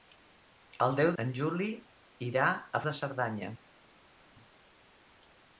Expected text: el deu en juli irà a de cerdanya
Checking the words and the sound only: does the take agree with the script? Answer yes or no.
yes